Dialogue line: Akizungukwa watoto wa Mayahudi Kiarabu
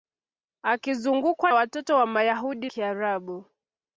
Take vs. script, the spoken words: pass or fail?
pass